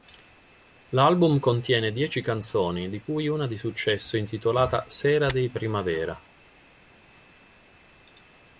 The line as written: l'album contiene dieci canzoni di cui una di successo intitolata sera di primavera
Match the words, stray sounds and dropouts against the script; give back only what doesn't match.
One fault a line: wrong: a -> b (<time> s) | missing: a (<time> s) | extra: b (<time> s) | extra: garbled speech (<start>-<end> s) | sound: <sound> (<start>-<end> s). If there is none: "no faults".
no faults